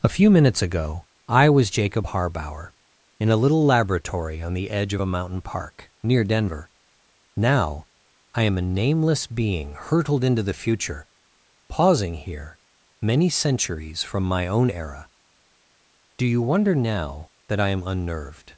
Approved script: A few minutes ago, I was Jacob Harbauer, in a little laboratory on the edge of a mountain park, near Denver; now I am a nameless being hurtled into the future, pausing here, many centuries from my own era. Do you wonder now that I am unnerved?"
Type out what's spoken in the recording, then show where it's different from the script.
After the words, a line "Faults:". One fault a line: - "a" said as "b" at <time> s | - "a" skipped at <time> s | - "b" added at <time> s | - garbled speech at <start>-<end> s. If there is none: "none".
A few minutes ago, I was Jacob Harbauer, in a little laboratory on the edge of a mountain park, near Denver; now I am a nameless being hurtled into the future, pausing here, many centuries from my own era. Do you wonder now that I am unnerved?"
Faults:
none